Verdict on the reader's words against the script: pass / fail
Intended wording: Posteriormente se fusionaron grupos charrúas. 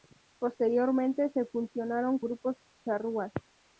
pass